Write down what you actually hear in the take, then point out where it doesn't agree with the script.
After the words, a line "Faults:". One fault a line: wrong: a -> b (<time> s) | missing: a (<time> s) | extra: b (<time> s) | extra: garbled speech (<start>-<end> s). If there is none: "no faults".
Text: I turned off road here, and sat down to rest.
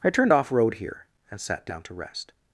I turned off road here, and sat down to rest.
Faults:
no faults